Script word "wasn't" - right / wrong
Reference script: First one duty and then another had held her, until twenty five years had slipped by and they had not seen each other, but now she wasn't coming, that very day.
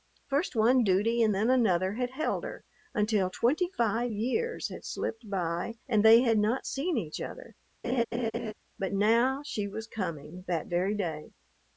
wrong